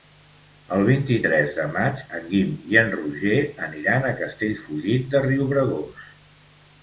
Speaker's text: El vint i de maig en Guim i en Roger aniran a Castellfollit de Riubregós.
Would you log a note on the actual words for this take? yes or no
yes